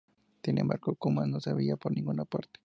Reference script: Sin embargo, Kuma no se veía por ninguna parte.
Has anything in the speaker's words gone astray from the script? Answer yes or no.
no